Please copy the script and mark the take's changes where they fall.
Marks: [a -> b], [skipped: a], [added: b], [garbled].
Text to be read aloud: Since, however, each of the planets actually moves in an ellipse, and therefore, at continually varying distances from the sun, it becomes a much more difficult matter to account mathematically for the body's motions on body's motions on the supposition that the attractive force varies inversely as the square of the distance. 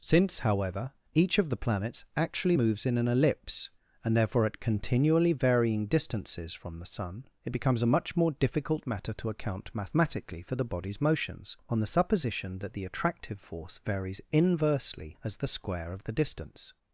Since, however, each of the planets actually moves in an ellipse, and therefore, at continually varying distances from the sun, it becomes a much more difficult matter to account mathematically for the body's motions on [skipped: body's motions on] the supposition that the attractive force varies inversely as the square of the distance.